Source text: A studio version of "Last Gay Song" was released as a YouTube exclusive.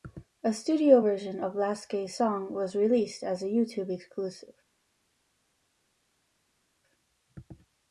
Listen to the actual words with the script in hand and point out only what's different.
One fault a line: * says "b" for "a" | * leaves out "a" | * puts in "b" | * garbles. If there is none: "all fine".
all fine